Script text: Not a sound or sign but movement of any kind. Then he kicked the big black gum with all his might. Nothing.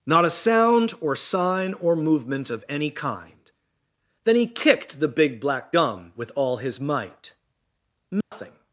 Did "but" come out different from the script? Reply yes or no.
yes